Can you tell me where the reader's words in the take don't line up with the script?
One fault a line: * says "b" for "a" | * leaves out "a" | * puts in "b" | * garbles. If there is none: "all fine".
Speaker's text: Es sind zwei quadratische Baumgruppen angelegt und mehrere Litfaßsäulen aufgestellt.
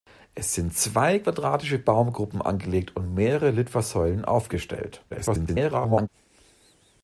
* garbles